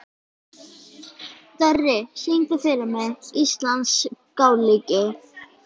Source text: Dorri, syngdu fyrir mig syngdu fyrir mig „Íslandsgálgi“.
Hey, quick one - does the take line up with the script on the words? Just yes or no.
no